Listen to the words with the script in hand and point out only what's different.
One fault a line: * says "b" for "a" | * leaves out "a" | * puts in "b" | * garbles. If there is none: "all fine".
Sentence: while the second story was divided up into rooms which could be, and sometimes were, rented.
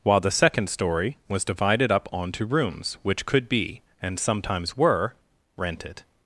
* says "onto" for "into"